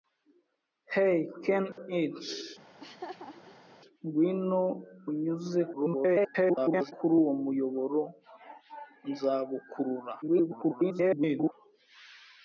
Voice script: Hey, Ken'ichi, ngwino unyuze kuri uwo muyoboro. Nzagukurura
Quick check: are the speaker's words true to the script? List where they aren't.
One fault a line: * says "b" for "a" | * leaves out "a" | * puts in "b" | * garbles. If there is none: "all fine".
* garbles
* garbles